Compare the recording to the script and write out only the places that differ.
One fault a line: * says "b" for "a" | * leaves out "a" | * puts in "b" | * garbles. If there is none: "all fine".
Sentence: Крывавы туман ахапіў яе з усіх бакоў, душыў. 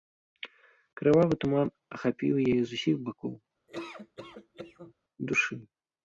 all fine